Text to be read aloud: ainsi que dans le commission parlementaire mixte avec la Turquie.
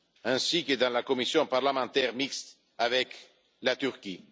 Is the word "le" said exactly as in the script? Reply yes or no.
no